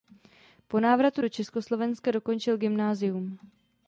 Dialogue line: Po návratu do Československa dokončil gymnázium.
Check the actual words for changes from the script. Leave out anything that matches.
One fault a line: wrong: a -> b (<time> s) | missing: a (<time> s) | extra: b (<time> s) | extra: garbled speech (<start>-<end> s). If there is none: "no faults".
no faults